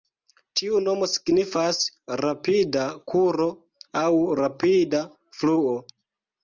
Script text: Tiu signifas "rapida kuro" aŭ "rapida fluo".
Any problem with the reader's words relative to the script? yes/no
yes